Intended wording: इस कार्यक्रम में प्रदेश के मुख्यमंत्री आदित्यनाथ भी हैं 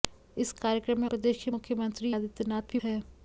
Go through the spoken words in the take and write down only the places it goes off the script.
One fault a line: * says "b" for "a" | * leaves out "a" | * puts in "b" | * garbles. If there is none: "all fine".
all fine